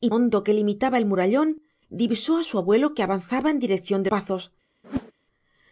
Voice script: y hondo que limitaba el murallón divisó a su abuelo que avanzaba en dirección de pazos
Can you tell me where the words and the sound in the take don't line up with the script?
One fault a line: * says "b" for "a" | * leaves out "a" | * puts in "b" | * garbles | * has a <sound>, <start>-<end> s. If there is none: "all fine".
* has a whoosh, 4.8-5.1 s